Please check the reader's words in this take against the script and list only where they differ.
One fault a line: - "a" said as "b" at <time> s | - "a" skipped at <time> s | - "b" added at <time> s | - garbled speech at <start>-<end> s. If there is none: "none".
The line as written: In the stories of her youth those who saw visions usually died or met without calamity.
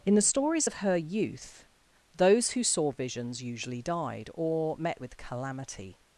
- "without" said as "with" at 5.0 s